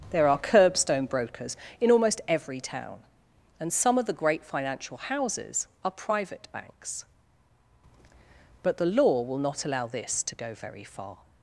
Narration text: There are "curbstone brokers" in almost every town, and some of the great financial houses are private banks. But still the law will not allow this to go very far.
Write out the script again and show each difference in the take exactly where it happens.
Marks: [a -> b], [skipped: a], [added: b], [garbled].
There are "curbstone brokers" in almost every town, and some of the great financial houses are private banks. But [skipped: still] the law will not allow this to go very far.